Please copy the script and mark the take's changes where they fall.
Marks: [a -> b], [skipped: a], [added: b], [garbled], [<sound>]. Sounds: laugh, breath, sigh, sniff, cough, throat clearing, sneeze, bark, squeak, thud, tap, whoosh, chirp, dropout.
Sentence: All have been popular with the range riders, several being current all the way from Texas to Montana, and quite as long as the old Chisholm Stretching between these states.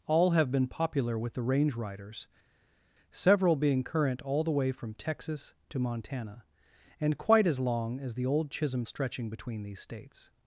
All have been popular with the range riders, several being current all the way from Texas to Montana, and quite as long as the old Chisholm Stretching between these states.